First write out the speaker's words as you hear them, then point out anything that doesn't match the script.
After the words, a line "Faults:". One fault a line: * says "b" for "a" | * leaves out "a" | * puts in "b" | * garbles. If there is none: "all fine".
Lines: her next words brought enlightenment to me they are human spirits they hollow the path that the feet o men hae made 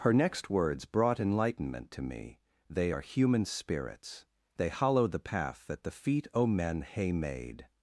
her next words brought enlightenment to me they are human spirits they hollow the path that the feet o men hae made
Faults:
all fine